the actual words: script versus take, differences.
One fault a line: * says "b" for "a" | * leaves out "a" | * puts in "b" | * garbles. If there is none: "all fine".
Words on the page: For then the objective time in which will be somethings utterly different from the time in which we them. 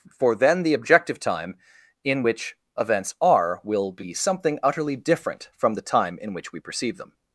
* puts in "events are"
* says "something" for "somethings"
* puts in "perceive"